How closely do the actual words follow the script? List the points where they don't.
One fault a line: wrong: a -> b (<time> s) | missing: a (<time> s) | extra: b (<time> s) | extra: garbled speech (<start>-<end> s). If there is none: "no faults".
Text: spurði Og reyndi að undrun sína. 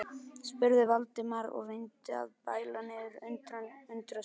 extra: Valdimar (0.9 s)
extra: bæla niður (2.5 s)